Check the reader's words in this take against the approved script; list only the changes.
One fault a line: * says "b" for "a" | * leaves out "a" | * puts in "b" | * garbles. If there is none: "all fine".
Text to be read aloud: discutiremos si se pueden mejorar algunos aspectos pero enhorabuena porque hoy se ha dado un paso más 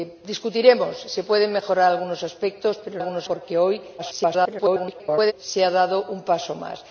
* says "algunos" for "enhorabuena"
* garbles